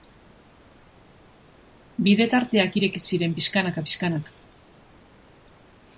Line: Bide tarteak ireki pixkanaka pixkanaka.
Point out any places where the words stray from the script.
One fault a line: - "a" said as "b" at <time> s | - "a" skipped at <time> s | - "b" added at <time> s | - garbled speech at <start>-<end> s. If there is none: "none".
- "ziren" added at 3.1 s